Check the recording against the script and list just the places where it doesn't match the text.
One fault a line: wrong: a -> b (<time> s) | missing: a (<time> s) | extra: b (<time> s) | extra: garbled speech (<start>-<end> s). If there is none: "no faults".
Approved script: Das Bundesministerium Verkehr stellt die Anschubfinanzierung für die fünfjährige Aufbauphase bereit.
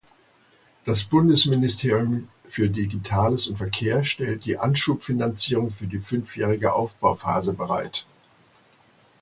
extra: für Digitales und (2.5 s)